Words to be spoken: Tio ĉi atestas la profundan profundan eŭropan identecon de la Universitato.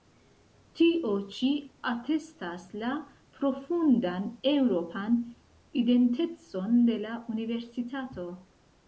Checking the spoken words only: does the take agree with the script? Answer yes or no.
no